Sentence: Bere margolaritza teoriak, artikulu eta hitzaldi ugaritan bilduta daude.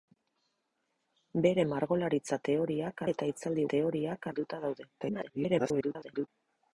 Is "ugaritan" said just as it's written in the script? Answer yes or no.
no